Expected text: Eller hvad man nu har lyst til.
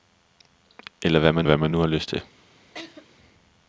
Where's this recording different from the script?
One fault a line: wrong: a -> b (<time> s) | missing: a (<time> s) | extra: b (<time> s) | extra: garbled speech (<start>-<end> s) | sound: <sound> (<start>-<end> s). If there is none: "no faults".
extra: hvad man (1.4 s)
sound: laugh (2.7-3.1 s)